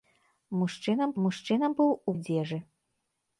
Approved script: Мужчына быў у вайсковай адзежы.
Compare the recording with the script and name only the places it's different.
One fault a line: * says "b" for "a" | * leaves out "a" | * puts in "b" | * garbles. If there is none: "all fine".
* puts in "мужчына"
* leaves out "вайсковай"